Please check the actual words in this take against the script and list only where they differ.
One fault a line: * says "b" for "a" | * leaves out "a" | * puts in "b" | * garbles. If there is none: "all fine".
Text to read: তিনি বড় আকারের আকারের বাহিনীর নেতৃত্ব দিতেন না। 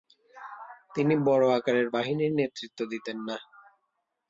* leaves out "আকারের"